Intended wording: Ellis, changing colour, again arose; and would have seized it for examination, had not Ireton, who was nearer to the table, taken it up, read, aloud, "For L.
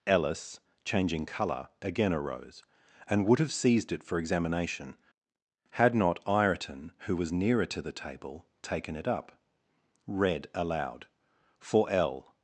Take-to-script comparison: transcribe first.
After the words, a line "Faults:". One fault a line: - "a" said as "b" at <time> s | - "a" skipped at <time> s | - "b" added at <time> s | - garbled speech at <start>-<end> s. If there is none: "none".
Ellis, changing colour, again arose; and would have seized it for examination, had not Ireton, who was nearer to the table, taken it up, read, aloud, "For L.
Faults:
none